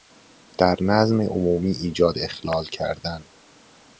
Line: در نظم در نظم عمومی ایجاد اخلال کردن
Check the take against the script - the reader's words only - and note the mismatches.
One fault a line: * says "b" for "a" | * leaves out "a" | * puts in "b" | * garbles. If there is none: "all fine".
* leaves out "در نظم"